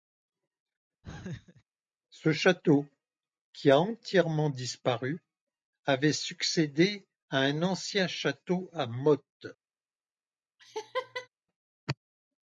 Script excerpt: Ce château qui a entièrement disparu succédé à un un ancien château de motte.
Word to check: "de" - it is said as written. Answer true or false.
false